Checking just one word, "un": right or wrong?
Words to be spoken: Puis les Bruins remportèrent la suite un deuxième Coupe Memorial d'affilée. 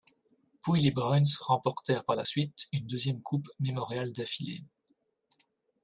wrong